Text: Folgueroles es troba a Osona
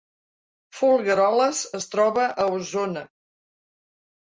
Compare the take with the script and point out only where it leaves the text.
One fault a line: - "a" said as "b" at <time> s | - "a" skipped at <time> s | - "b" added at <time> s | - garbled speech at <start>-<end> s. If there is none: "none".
none